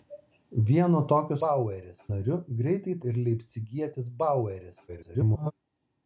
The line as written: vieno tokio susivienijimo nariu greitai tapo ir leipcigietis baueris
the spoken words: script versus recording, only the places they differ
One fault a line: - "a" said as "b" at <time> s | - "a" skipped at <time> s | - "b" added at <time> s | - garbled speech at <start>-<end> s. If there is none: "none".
- "susivienijimo" said as "baueris" at 1.4 s
- "tapo" skipped at 2.9 s
- garbled speech at 4.9-5.5 s